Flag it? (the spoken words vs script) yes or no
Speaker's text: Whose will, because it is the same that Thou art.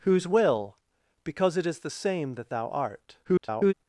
yes